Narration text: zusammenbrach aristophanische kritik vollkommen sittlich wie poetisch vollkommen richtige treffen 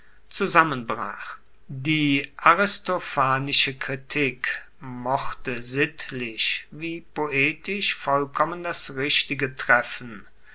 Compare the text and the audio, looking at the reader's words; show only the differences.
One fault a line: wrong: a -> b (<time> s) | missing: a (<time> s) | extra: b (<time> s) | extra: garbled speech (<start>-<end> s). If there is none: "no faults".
extra: die (1.7 s)
wrong: vollkommen -> mochte (4.8 s)
extra: das (8.6 s)